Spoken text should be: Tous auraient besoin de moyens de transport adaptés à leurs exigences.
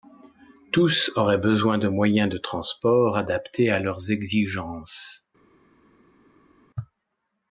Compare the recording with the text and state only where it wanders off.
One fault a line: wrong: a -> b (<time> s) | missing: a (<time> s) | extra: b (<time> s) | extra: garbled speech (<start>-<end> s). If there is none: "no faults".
no faults